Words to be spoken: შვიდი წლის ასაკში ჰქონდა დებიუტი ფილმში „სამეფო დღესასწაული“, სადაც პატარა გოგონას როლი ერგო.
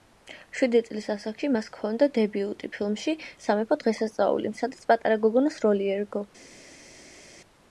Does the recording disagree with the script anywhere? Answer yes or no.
yes